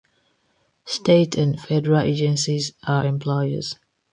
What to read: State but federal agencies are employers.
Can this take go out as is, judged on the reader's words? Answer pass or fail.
fail